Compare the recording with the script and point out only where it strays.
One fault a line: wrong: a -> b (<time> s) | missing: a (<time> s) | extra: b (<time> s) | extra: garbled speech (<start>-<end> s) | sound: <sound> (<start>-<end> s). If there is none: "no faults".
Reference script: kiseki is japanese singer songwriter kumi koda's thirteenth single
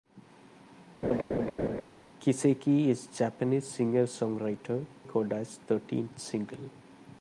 sound: laugh (1.0-1.8 s)
missing: kumi (4.9 s)